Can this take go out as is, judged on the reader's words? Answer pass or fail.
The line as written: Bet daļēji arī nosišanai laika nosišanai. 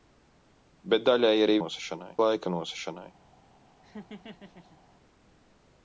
pass